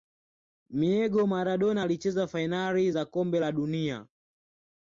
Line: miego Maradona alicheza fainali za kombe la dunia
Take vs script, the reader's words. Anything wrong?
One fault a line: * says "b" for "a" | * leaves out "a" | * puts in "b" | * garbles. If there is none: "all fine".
all fine